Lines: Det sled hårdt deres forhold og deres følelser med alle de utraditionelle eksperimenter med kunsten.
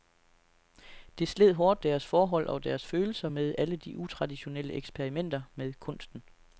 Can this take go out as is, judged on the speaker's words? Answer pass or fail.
pass